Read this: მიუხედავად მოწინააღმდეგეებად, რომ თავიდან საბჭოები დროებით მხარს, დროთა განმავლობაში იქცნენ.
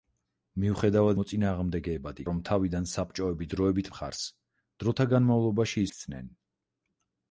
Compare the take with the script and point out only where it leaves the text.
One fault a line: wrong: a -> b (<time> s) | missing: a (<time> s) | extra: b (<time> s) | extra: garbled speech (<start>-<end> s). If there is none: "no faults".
no faults